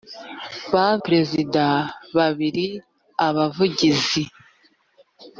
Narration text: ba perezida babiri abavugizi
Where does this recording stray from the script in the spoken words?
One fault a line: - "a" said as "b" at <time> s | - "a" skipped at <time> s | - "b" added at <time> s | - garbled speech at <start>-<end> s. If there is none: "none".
none